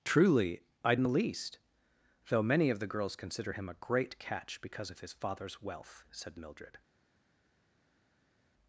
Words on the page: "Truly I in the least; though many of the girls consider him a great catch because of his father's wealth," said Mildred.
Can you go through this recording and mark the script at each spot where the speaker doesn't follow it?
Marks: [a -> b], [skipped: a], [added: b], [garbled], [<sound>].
"Truly I in the least; though many of the girls consider him a great catch because of his father's wealth," said Mildred.